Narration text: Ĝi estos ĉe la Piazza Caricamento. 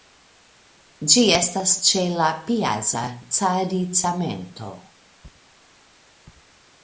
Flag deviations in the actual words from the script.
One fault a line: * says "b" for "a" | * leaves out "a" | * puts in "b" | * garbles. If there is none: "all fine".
* says "estas" for "estos"